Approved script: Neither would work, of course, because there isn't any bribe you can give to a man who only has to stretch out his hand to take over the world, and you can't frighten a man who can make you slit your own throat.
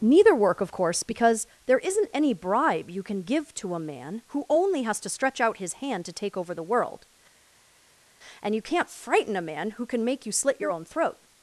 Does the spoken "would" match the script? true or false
false